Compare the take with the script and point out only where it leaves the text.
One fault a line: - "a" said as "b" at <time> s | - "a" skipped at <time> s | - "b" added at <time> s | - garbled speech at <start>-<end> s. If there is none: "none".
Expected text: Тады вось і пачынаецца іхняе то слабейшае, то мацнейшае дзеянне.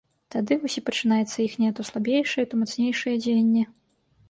none